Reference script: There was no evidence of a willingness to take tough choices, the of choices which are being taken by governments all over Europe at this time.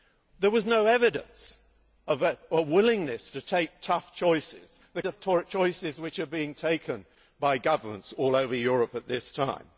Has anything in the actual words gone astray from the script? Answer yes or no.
no